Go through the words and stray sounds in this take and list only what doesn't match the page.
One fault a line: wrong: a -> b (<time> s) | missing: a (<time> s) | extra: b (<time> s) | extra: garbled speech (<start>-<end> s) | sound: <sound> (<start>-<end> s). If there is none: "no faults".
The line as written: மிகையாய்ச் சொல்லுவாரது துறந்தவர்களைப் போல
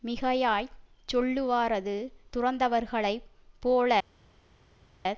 no faults